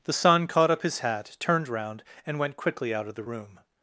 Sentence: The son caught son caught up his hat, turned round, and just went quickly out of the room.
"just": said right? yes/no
no